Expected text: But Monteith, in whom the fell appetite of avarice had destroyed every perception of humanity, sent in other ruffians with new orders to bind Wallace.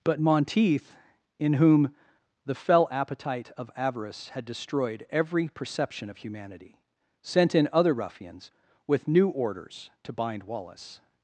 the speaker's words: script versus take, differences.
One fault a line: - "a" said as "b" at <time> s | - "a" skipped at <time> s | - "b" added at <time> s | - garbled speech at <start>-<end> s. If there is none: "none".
none